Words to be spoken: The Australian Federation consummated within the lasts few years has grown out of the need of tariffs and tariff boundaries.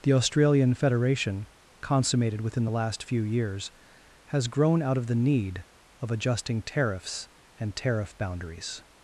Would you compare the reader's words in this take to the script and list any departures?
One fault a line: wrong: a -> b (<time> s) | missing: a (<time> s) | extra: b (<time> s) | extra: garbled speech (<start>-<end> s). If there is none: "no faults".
wrong: lasts -> last (2.7 s)
extra: adjusting (6.1 s)